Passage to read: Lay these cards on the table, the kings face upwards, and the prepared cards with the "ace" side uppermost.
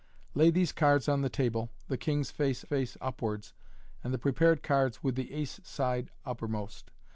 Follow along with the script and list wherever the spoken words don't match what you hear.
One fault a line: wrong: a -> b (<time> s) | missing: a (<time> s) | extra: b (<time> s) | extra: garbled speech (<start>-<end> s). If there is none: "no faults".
extra: face (2.6 s)